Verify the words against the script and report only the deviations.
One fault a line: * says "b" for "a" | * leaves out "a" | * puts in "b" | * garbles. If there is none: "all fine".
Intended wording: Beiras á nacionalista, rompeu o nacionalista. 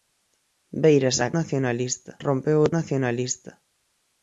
all fine